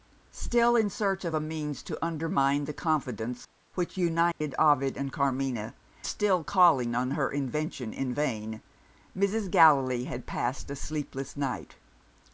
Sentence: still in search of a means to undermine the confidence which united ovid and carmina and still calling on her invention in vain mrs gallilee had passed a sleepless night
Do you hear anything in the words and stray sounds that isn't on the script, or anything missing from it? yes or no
yes